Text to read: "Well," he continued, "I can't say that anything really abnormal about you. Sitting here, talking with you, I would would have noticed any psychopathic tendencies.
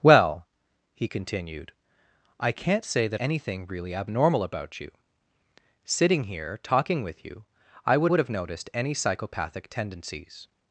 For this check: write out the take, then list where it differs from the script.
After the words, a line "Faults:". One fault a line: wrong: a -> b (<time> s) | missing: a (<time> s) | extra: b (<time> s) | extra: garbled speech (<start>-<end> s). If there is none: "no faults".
"Well," he continued, "I can't say that anything really abnormal about you. Sitting here, talking with you, I would would have noticed any psychopathic tendencies.
Faults:
no faults